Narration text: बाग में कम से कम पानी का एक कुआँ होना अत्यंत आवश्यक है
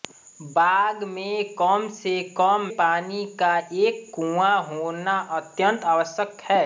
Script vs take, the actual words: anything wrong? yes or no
no